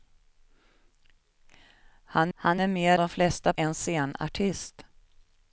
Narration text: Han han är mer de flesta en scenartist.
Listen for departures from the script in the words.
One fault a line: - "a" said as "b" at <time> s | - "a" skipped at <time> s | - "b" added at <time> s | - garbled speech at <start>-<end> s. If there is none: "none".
none